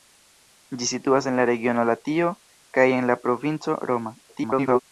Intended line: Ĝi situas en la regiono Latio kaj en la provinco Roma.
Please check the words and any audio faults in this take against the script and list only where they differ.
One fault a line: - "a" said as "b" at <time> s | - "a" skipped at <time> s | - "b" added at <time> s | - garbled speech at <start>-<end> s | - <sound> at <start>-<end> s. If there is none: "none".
- garbled speech at 4.3-4.8 s